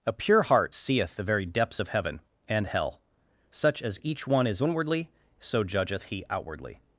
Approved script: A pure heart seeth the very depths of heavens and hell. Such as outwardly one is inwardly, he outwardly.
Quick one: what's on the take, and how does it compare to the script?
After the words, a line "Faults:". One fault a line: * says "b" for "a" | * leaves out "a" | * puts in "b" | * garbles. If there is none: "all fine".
A pure heart seeth the very depths of heaven and hell. Such as each one is inwardly, so judgeth he outwardly.
Faults:
* says "heaven" for "heavens"
* says "each" for "outwardly"
* puts in "so judgeth"